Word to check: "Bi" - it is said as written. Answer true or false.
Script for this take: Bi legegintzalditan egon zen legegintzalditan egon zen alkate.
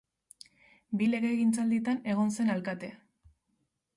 true